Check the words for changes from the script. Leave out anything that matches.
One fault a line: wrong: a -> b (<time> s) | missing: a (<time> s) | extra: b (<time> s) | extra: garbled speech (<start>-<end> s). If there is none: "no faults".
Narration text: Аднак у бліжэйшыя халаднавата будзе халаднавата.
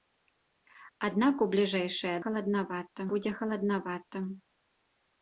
no faults